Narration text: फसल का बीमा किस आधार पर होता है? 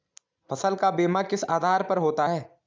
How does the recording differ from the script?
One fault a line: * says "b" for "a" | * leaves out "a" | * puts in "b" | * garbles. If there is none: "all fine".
all fine